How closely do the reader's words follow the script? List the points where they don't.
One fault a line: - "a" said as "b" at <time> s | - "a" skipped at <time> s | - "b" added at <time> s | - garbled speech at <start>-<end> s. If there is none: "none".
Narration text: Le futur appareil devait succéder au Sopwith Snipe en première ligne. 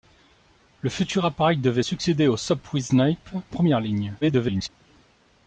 - "en" skipped at 3.3 s
- garbled speech at 4.2-4.7 s